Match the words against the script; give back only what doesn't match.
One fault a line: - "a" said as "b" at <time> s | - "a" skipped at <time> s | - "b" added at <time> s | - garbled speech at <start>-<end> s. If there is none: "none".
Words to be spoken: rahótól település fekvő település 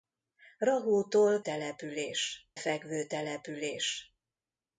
none